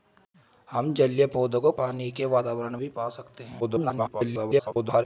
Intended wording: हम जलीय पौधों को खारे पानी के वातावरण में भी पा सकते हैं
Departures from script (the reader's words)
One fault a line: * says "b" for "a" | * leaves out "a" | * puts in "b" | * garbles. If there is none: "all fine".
* leaves out "खारे"
* leaves out "में"
* garbles